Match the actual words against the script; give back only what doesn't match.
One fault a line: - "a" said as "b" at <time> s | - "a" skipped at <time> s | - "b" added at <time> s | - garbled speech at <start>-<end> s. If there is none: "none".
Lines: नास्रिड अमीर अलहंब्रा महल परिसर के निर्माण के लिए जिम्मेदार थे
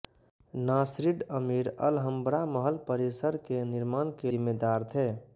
- "लिए" skipped at 4.3 s